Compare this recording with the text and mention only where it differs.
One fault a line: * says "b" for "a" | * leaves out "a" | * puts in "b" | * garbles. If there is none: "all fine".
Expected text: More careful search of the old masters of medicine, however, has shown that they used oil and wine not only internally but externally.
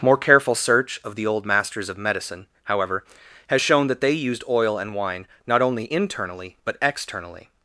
all fine